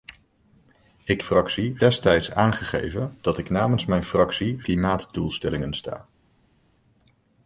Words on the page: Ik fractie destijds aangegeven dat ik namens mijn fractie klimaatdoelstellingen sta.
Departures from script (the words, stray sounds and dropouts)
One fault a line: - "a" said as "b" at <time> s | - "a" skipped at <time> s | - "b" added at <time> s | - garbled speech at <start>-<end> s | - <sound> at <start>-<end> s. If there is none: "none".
none